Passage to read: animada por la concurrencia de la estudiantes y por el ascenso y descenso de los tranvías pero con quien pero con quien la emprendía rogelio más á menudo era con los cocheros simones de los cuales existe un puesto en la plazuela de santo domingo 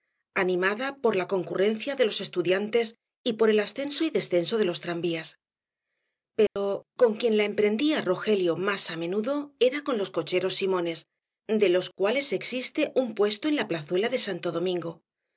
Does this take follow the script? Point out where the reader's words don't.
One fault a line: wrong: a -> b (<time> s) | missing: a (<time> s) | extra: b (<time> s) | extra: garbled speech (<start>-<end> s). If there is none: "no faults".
wrong: la -> los (2.0 s)
missing: pero con quien (7.4 s)